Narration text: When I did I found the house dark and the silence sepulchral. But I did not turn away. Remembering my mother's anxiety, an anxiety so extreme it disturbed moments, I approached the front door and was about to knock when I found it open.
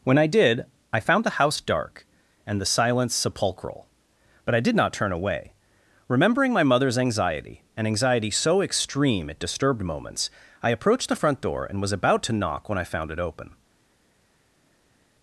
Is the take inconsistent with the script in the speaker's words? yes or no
no